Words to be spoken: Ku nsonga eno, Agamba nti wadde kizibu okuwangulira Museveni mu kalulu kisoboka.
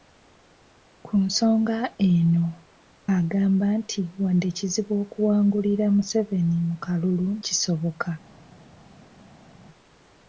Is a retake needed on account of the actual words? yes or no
no